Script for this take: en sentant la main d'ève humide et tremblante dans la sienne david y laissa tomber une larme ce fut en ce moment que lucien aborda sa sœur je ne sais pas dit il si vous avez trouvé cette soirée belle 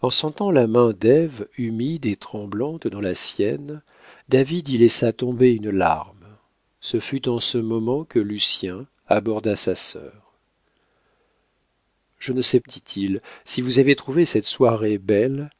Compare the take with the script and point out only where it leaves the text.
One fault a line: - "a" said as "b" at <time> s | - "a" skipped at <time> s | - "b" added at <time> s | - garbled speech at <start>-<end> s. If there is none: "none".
- "pas" skipped at 12.6 s